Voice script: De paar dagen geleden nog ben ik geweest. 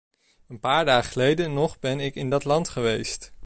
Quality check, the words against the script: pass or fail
fail